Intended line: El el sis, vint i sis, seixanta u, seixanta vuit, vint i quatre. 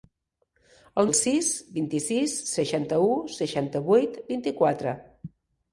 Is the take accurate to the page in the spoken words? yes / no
yes